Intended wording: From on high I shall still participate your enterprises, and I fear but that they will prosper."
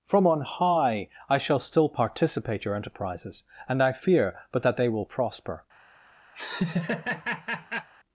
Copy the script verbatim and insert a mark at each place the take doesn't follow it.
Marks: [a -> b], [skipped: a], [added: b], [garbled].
From on high I shall still participate your enterprises, and I fear but that they will prosper."